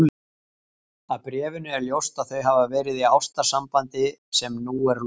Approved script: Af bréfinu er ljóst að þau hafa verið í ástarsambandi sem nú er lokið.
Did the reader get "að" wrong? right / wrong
right